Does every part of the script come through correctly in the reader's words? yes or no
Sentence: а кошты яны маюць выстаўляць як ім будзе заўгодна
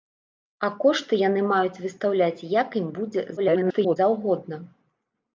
no